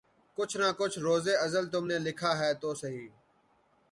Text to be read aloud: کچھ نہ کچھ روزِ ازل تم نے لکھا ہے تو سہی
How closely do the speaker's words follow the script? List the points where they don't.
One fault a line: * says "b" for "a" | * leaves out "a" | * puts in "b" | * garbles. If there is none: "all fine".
all fine